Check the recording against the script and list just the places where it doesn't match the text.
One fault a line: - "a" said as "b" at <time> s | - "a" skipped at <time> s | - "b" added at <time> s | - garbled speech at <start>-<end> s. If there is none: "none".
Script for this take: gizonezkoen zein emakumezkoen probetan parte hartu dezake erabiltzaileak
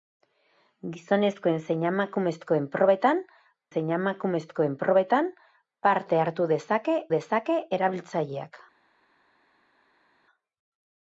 - "zein emakumezkoen probetan" added at 3.7 s
- "dezake" added at 7.2 s